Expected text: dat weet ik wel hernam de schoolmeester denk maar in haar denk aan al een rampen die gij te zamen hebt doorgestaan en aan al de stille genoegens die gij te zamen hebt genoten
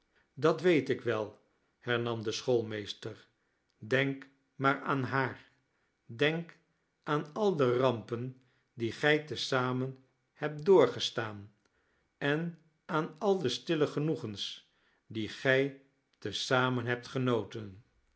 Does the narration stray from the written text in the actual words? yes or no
yes